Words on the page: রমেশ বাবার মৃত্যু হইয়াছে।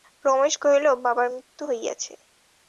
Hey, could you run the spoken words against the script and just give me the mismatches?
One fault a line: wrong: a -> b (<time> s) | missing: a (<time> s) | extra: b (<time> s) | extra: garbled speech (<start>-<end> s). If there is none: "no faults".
extra: কহিল (0.6 s)